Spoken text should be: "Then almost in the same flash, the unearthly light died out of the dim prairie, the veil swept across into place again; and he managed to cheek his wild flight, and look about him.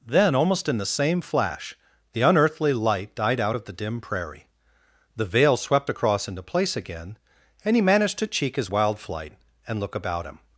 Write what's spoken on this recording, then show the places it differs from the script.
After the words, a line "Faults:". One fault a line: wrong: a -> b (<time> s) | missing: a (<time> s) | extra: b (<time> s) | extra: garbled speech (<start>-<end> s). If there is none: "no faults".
"Then almost in the same flash, the unearthly light died out of the dim prairie, the veil swept across into place again; and he managed to cheek his wild flight, and look about him.
Faults:
no faults